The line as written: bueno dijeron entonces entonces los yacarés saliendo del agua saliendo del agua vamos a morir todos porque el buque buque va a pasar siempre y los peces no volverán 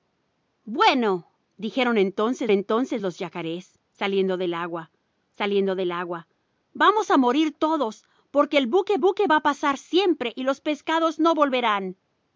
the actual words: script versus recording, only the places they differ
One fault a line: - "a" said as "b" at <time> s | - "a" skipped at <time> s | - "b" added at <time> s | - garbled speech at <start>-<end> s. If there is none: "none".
none